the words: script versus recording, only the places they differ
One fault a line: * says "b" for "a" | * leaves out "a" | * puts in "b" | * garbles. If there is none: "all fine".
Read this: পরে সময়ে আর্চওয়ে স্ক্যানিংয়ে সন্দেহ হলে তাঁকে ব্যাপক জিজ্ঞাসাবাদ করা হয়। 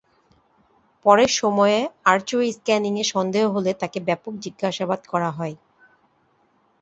all fine